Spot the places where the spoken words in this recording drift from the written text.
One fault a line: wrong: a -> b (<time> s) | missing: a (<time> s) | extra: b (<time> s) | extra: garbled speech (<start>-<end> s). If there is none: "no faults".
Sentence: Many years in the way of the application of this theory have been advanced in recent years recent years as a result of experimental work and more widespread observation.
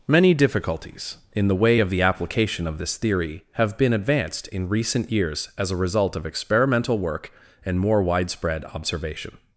wrong: years -> difficulties (0.3 s)
missing: recent years (5.5 s)